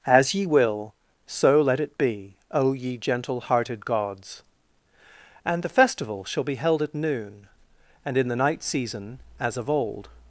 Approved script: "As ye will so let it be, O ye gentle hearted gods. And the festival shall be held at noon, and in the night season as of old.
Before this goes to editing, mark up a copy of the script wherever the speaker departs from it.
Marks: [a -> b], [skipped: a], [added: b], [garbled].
"As ye will so let it be, O ye gentle hearted gods. And the festival shall be held at noon, and in the night season as of old.